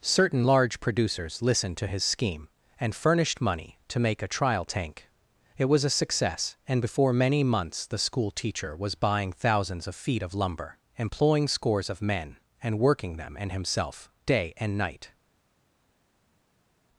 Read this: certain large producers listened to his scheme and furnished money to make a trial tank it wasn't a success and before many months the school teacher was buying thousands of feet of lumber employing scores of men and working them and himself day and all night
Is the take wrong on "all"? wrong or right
wrong